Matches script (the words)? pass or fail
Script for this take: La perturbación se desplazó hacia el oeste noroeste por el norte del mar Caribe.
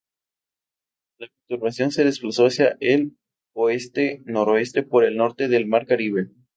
pass